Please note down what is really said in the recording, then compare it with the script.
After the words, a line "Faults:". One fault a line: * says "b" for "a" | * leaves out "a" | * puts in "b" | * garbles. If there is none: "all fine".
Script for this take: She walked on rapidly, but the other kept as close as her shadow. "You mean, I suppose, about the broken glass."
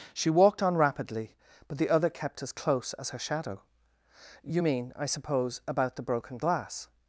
She walked on rapidly, but the other kept as close as her shadow. "You mean, I suppose, about the broken glass."
Faults:
all fine